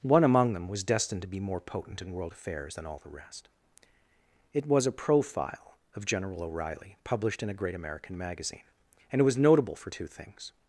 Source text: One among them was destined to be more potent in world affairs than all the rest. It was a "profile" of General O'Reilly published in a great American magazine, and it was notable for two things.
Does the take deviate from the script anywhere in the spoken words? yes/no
no